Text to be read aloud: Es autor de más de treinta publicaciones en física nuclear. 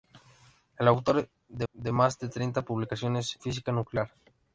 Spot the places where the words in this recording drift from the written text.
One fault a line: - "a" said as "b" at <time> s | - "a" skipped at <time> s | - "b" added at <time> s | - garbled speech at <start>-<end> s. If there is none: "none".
- "de" added at 1.7 s
- "en" skipped at 3.4 s